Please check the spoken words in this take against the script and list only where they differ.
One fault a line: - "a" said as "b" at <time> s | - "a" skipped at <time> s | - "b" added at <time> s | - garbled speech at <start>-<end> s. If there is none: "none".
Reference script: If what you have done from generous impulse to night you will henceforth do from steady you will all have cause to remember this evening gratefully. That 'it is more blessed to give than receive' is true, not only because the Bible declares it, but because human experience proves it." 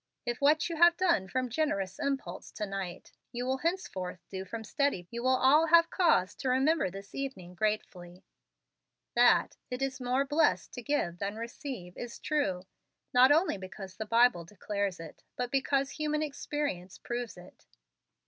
none